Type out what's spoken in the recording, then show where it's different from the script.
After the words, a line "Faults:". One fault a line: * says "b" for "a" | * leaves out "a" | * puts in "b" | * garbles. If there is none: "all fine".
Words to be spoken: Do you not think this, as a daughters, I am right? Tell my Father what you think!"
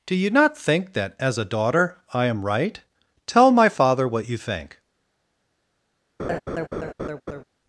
Do you not think that, as a daughter, I am right? Tell my Father what you think!"
Faults:
* says "that" for "this"
* says "daughter" for "daughters"